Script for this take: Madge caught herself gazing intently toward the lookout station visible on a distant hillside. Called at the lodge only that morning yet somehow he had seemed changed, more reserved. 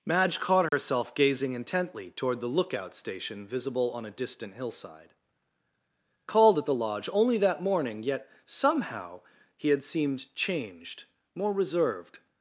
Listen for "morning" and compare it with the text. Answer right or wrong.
right